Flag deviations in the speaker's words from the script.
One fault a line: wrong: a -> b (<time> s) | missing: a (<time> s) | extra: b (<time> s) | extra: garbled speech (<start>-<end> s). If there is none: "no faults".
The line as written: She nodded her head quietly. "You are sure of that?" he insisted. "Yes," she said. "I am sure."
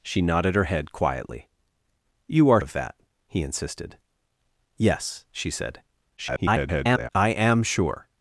missing: sure (2.6 s)
extra: garbled speech (6.2-7.1 s)